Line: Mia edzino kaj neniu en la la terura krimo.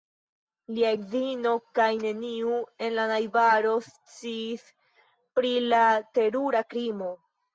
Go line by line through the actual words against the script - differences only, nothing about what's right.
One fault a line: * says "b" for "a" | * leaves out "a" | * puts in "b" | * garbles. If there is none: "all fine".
* says "Lia" for "Mia"
* puts in "najbaro sciis pri"